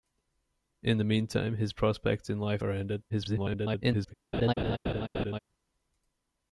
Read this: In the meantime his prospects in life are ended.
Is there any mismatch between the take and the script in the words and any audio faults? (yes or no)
yes